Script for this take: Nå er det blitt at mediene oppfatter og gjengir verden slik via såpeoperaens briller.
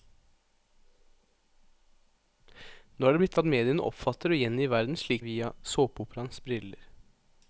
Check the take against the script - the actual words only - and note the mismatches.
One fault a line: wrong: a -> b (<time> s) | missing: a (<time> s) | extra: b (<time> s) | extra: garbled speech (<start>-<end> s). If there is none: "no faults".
no faults